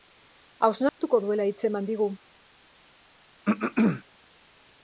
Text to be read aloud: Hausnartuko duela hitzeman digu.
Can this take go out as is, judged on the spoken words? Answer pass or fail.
pass